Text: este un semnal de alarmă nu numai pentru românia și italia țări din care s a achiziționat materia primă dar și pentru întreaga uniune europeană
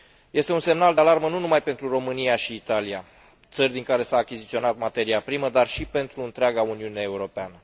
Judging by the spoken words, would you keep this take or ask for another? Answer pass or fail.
pass